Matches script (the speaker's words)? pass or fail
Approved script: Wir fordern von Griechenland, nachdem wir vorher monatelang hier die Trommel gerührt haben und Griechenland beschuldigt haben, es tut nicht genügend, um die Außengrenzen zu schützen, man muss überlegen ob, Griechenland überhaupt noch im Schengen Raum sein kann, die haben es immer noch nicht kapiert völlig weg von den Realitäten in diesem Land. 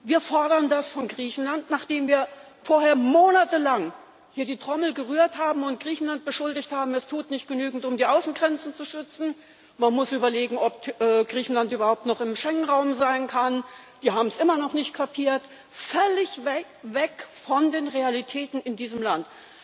fail